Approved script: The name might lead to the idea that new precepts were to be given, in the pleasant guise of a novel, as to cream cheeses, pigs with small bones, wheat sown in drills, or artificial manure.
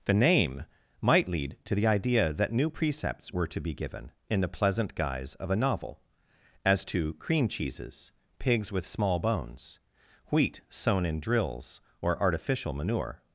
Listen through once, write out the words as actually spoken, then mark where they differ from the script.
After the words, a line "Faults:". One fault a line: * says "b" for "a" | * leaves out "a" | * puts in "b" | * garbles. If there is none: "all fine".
The name might lead to the idea that new precepts were to be given, in the pleasant guise of a novel, as to cream cheeses, pigs with small bones, wheat sown in drills, or artificial manure.
Faults:
all fine